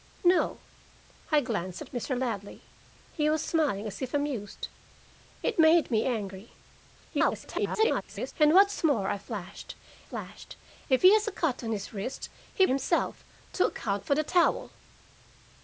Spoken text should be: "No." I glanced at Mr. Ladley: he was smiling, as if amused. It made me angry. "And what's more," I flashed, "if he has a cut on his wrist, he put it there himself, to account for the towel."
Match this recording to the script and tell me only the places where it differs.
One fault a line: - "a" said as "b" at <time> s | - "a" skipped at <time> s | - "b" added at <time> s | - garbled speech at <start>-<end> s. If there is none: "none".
- garbled speech at 7.1-8.3 s
- "flashed" added at 10.0 s
- "put it there" skipped at 12.7 s